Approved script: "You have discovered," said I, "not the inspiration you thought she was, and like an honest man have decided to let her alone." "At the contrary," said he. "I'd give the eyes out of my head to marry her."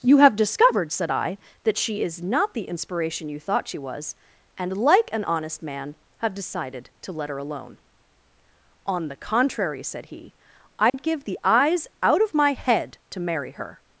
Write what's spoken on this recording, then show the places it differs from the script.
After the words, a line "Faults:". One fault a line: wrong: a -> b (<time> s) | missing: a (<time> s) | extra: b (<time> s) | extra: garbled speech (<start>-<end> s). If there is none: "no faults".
"You have discovered," said I, "that she is not the inspiration you thought she was, and like an honest man have decided to let her alone." "On the contrary," said he. "I'd give the eyes out of my head to marry her."
Faults:
extra: that she is (1.6 s)
wrong: At -> On (8.8 s)